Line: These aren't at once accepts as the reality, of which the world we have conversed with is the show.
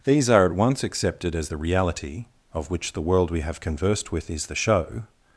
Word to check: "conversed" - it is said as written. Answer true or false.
true